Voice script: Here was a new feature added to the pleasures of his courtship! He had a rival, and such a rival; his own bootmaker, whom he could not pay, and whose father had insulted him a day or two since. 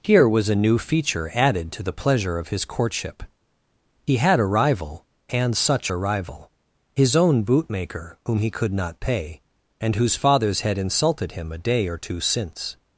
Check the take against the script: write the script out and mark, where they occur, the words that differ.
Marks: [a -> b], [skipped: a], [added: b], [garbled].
Here was a new feature added to the [pleasures -> pleasure] of his courtship! He had a rival, and such a rival; his own bootmaker, whom he could not pay, and whose [father -> fathers] had insulted him a day or two since.